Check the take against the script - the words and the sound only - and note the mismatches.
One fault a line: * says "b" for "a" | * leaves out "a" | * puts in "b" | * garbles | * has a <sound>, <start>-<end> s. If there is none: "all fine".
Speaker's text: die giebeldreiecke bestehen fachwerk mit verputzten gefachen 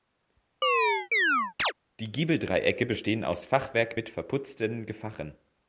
* has a chirp, 0.6-1.7 s
* puts in "aus"